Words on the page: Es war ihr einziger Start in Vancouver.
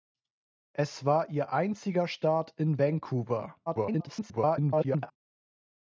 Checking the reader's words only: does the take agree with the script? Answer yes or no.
no